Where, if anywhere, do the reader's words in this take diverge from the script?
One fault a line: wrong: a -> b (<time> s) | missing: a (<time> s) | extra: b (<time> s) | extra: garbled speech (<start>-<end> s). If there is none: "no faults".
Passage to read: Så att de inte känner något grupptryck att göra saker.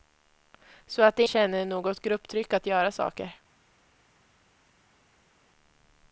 missing: inte (1.2 s)